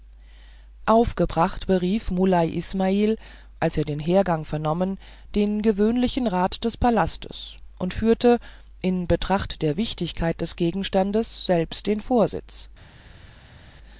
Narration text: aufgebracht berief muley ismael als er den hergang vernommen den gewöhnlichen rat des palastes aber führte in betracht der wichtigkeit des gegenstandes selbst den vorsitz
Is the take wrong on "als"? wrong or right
right